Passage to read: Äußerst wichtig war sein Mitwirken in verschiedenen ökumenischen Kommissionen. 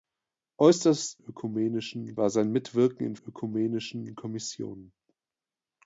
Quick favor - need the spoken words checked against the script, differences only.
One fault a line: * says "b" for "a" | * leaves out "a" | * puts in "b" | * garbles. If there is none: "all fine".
* says "ökumenischen" for "wichtig"
* leaves out "verschiedenen"